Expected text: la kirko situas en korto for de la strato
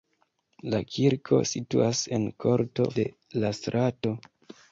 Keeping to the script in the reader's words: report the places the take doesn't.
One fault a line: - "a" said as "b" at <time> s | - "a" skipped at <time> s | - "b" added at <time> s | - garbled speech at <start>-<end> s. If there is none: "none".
- "for" skipped at 2.9 s